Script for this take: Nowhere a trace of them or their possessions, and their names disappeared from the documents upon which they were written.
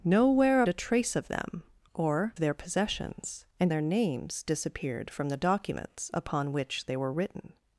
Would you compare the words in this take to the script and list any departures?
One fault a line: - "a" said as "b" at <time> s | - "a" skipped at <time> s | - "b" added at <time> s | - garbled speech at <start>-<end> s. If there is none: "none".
none